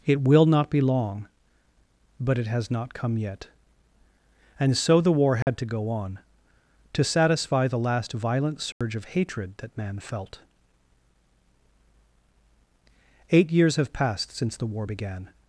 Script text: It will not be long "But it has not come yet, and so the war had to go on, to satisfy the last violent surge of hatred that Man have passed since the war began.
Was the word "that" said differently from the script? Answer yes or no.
no